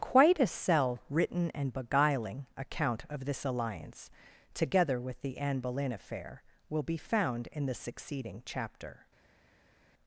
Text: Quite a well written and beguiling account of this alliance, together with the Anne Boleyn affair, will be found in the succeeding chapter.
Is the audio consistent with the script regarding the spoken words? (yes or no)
no